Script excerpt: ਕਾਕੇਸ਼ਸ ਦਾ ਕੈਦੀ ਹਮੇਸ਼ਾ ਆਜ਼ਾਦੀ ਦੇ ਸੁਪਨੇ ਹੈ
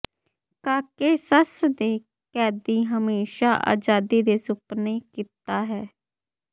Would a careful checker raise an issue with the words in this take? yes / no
yes